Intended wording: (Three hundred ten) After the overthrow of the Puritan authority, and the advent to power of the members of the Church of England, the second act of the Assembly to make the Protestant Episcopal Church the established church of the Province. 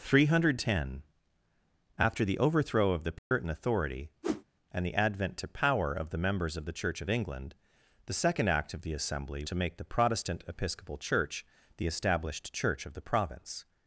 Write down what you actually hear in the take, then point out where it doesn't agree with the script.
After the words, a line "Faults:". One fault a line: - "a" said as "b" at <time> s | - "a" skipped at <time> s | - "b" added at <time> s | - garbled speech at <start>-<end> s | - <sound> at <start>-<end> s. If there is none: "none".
(Three hundred ten) After the overthrow of the Puritan authority, and the advent to power of the members of the Church of England, the second act of the Assembly to make the Protestant Episcopal Church the established church of the Province.
Faults:
- dropout at 3.2-3.3 s
- whoosh at 4.2-4.4 s